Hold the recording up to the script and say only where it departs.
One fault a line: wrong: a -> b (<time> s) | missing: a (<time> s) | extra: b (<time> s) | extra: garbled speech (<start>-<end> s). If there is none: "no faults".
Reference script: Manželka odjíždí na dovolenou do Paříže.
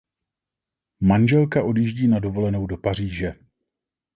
no faults